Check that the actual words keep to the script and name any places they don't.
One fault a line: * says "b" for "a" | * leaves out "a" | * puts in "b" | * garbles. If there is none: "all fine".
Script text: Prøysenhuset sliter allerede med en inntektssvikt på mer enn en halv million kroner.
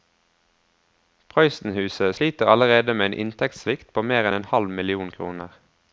all fine